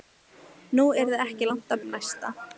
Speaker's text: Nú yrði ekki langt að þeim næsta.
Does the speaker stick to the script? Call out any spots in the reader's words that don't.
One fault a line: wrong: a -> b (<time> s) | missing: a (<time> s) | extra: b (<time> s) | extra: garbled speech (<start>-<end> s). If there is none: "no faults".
no faults